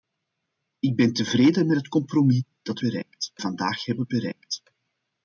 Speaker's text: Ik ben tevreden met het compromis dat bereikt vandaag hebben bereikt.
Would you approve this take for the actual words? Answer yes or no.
yes